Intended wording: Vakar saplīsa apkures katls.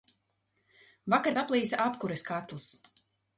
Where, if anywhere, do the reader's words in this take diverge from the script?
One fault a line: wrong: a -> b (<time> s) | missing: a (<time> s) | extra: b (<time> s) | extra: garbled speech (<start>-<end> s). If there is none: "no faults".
no faults